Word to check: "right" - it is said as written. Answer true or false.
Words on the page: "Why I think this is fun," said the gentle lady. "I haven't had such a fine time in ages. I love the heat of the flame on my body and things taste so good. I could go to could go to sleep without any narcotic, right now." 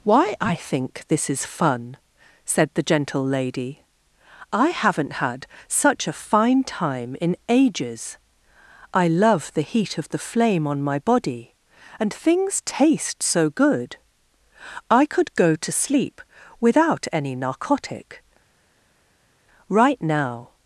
true